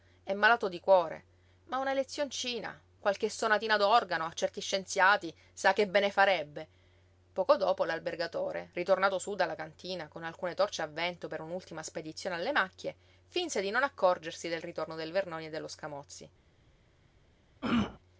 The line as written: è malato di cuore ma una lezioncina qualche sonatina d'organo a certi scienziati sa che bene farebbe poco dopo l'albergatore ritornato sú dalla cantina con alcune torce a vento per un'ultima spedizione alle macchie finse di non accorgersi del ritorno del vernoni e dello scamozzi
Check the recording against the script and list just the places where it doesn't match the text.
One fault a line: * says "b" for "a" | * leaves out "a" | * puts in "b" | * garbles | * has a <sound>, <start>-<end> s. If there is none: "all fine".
* has a throat clearing, 17.6-18.0 s